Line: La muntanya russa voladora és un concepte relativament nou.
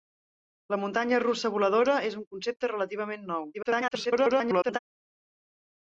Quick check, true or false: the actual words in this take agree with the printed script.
false